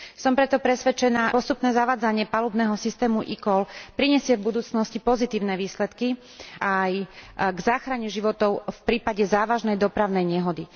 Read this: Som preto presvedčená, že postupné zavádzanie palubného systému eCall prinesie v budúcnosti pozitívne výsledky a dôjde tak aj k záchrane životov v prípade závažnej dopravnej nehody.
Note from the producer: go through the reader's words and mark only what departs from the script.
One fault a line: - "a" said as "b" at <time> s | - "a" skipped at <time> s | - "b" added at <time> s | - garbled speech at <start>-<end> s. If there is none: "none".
- "že" skipped at 1.3 s
- "a dôjde tak" skipped at 6.2 s